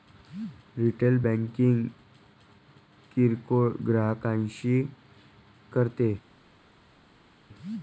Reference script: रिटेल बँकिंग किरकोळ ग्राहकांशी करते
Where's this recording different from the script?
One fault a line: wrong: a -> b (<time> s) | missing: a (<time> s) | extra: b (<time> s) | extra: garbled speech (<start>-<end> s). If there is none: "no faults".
no faults